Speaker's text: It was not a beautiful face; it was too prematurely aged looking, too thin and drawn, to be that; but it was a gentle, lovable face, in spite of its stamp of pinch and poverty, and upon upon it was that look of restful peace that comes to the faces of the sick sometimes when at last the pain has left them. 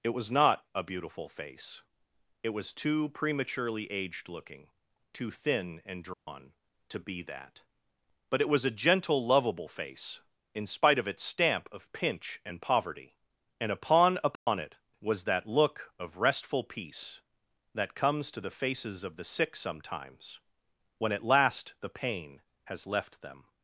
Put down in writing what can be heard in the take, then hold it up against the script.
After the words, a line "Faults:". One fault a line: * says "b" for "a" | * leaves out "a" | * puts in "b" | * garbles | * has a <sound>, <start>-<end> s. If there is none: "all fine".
It was not a beautiful face; it was too prematurely aged looking, too thin and drawn, to be that; but it was a gentle, lovable face, in spite of its stamp of pinch and poverty, and upon upon it was that look of restful peace that comes to the faces of the sick sometimes when at last the pain has left them.
Faults:
* has a dropout, 6.1-6.3 s
* has a dropout, 14.4-14.5 s